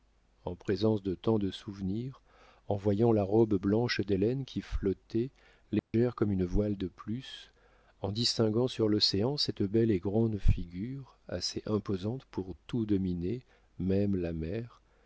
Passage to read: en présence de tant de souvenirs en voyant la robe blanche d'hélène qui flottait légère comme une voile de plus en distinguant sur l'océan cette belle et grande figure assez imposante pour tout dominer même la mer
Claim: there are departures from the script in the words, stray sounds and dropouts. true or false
true